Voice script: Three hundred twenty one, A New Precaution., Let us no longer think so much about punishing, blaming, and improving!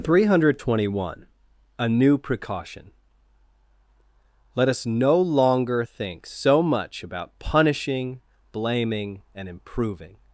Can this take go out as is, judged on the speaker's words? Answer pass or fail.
pass